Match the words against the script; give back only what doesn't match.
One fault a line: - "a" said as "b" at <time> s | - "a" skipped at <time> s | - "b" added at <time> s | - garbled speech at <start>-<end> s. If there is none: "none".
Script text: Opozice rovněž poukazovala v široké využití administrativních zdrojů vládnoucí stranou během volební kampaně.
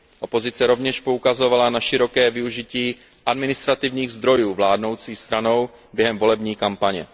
- "v" said as "na" at 1.7 s